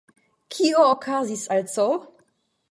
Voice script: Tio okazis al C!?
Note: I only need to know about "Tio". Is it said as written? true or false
false